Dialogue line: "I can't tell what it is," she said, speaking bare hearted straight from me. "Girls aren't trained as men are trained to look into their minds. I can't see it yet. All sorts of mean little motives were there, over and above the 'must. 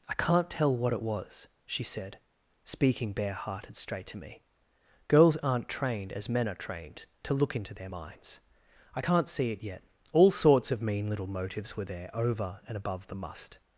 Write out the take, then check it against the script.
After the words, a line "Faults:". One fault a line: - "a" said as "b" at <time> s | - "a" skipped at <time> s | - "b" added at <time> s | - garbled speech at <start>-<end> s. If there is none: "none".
"I can't tell what it was," she said, speaking bare hearted straight to me. "Girls aren't trained as men are trained to look into their minds. I can't see it yet. All sorts of mean little motives were there, over and above the 'must.
Faults:
- "is" said as "was" at 1.0 s
- "from" said as "to" at 4.1 s